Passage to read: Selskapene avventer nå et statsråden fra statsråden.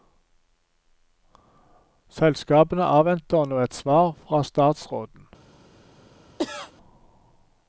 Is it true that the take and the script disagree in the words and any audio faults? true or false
true